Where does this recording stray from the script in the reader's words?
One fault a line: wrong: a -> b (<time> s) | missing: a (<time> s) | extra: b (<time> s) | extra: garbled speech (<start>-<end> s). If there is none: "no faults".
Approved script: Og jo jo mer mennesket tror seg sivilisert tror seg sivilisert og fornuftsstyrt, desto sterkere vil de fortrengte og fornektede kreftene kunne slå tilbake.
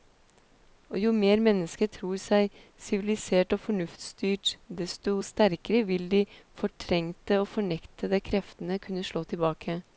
missing: jo (1.1 s)
missing: tror seg sivilisert (3.5 s)